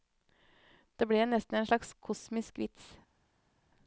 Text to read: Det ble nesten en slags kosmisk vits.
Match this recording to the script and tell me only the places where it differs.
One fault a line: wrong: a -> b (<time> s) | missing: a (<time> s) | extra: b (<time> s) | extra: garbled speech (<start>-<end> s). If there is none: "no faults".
no faults